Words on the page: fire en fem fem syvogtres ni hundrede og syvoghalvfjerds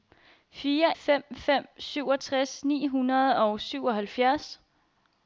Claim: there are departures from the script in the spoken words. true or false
true